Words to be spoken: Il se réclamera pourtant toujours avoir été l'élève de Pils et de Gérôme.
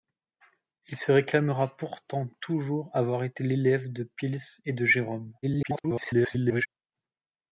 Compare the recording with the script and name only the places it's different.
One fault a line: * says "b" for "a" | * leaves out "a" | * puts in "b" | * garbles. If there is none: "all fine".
* garbles